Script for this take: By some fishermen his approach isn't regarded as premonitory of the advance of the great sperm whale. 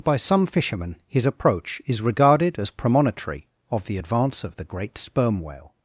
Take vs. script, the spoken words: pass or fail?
fail